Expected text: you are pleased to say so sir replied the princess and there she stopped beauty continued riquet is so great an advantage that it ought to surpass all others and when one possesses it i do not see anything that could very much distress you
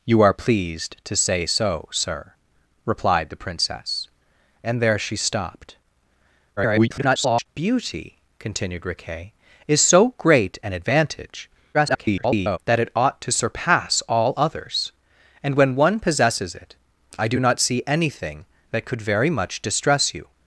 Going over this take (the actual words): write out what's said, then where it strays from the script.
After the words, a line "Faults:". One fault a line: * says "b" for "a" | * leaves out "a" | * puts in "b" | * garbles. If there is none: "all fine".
you are pleased to say so sir replied the princess and there she stopped [garbled] beauty continued riquet is so great an advantage [garbled] that it ought to surpass all others and when one possesses it i do not see anything that could very much distress you
Faults:
* garbles
* garbles